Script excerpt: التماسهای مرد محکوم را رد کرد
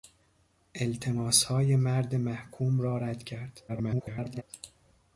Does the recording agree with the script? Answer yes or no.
no